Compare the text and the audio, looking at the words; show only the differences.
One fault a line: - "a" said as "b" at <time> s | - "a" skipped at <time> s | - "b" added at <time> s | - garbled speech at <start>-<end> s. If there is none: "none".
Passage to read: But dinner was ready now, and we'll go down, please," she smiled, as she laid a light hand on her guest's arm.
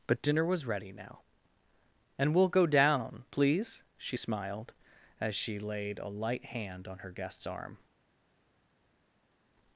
none